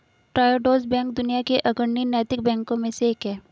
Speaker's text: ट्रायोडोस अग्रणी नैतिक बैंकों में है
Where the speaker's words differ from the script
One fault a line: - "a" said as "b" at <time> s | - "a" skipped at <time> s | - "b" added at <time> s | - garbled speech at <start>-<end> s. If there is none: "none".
- "बैंक दुनिया के" added at 0.8 s
- "से एक" added at 2.9 s